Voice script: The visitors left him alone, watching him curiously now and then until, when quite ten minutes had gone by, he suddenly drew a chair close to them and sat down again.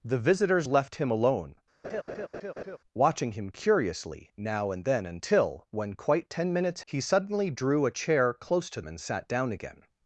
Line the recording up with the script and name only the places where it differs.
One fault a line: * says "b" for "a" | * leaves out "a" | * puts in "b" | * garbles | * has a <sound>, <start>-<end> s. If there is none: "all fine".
* has a laugh, 1.8-2.8 s
* leaves out "had gone by"
* leaves out "them"